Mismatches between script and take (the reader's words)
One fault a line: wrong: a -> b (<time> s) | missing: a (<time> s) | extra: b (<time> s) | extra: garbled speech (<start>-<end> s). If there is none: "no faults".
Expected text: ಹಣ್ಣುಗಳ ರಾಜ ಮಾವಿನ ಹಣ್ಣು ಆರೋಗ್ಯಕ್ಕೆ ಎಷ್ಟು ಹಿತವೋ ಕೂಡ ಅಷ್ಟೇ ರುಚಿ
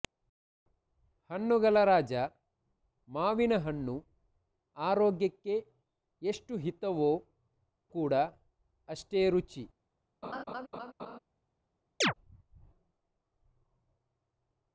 no faults